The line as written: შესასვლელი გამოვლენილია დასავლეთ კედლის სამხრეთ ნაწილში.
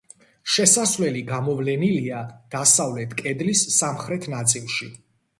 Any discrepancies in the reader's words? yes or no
no